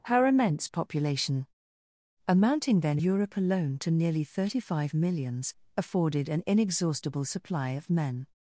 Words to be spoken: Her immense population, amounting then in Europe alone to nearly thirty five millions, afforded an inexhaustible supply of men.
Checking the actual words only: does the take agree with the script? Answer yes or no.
no